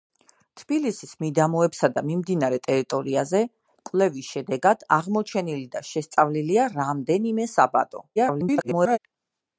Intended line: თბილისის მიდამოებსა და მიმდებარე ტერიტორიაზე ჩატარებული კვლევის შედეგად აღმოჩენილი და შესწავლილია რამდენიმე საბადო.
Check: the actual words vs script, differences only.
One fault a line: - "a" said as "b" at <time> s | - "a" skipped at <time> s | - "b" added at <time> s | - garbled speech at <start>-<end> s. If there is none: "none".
- "ჩატარებული" skipped at 3.4 s
- garbled speech at 8.2-9.0 s